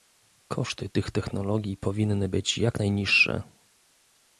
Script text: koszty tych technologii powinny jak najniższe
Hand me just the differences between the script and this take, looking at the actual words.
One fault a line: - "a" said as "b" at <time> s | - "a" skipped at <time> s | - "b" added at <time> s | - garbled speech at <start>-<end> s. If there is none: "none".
- "być" added at 2.3 s